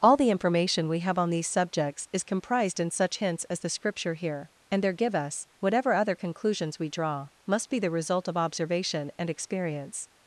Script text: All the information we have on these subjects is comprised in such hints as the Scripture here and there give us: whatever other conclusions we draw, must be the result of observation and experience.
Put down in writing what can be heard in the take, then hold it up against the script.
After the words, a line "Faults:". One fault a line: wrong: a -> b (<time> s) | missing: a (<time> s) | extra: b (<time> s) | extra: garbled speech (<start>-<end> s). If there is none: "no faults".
All the information we have on these subjects is comprised in such hints as the Scripture here and there give us: whatever other conclusions we draw, must be the result of observation and experience.
Faults:
no faults